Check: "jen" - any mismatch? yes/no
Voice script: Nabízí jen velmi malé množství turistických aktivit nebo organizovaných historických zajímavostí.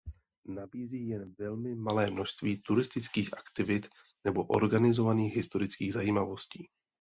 no